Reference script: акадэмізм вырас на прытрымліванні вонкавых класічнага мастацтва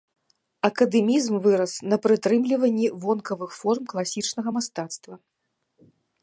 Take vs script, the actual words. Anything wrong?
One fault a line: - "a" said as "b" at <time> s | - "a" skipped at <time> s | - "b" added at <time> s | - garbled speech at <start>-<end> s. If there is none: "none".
- "форм" added at 3.6 s